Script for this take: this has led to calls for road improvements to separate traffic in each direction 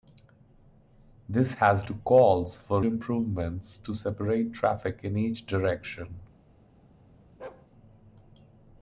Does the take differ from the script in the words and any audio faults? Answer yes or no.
yes